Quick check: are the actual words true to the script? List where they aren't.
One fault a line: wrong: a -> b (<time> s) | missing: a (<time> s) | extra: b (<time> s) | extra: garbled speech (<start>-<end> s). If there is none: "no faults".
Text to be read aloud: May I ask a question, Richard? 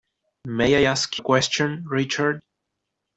no faults